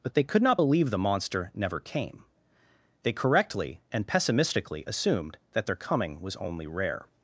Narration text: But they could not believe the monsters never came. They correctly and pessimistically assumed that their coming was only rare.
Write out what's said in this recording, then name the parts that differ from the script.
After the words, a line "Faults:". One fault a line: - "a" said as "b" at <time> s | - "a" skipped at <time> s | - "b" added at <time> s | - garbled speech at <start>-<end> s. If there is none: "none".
But they could not believe the monster never came. They correctly and pessimistically assumed that their coming was only rare.
Faults:
- "monsters" said as "monster" at 1.0 s